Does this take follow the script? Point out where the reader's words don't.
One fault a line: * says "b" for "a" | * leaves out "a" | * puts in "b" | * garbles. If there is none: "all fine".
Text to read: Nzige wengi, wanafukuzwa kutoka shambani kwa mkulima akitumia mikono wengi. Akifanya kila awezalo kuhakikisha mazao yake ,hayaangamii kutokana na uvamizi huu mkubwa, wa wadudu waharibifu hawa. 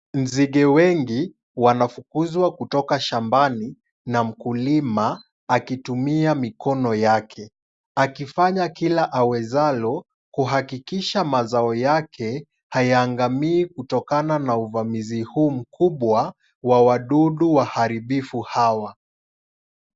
* says "na" for "kwa"
* says "yake" for "wengi"